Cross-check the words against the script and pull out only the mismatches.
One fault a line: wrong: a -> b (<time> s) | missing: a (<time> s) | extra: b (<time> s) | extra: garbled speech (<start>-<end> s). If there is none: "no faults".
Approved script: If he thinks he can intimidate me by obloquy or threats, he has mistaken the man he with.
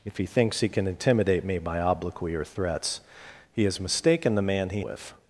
no faults